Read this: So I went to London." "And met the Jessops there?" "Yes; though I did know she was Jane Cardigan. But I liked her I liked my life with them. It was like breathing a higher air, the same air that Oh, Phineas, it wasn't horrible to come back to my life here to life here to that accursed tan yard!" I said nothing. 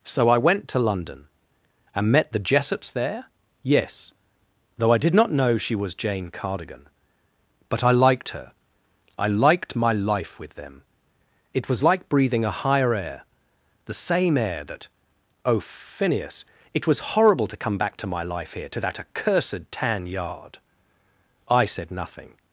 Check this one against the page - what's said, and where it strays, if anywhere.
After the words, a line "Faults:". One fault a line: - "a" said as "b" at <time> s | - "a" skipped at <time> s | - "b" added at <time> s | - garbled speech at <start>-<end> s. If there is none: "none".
So I went to London." "And met the Jessops there?" "Yes; though I did not know she was Jane Cardigan. But I liked her I liked my life with them. It was like breathing a higher air, the same air that Oh, Phineas, it was horrible to come back to my life here to that accursed tan yard!" I said nothing.
Faults:
- "not" added at 5.1 s
- "wasn't" said as "was" at 16.9 s
- "life here to" skipped at 18.8 s